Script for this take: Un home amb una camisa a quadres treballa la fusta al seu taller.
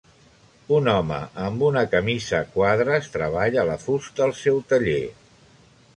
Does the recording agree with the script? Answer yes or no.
yes